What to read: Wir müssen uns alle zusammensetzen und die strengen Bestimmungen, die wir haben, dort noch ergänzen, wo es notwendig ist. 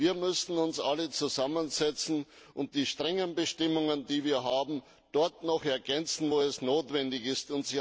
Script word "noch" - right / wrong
right